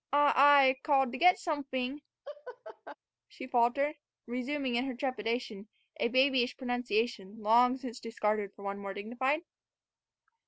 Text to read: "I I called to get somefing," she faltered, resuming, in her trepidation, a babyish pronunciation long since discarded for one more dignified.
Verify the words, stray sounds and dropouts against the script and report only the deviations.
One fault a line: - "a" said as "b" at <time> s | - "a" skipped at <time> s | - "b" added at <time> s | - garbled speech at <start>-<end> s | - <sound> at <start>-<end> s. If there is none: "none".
- laugh at 2.2-3.0 s